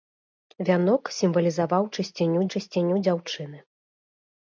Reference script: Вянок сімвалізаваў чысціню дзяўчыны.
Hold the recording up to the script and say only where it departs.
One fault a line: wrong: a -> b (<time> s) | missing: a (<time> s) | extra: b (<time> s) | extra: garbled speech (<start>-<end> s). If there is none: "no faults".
extra: чысціню (2.5 s)